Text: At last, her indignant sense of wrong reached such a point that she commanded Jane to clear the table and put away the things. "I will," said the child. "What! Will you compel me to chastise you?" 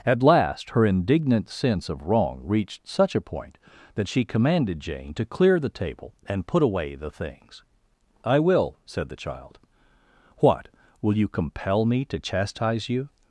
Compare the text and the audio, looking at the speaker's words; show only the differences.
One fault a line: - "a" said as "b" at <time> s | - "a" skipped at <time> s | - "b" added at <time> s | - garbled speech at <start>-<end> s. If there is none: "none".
none